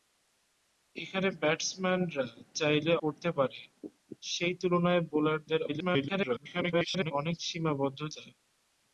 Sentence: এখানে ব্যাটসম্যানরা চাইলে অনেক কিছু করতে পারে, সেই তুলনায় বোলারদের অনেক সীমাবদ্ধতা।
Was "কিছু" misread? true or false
true